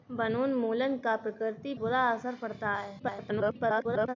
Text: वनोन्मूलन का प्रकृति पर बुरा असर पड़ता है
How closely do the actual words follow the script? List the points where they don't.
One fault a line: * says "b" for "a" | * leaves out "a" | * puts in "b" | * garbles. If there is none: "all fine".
* leaves out "पर"
* garbles